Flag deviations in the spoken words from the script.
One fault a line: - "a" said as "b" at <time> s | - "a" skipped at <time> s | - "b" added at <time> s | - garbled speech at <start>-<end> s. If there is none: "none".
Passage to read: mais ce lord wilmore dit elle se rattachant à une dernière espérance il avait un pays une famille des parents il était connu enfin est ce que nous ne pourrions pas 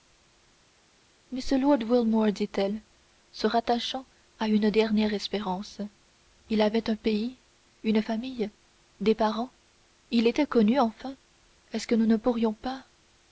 none